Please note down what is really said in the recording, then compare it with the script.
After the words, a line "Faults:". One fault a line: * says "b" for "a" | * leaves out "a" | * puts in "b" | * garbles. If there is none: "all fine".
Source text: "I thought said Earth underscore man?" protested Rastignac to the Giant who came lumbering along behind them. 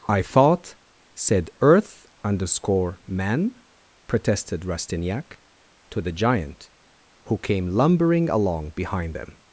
"I thought said Earth underscore man?" protested Rastignac to the Giant who came lumbering along behind them.
Faults:
all fine